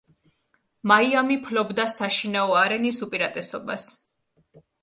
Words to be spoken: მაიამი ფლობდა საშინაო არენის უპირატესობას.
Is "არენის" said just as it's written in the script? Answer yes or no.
yes